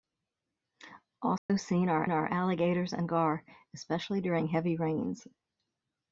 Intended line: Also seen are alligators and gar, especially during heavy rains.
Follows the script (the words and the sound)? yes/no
no